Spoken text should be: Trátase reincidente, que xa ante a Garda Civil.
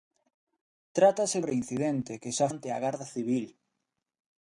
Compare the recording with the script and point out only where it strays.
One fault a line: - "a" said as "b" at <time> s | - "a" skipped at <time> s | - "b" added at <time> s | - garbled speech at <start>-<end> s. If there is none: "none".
none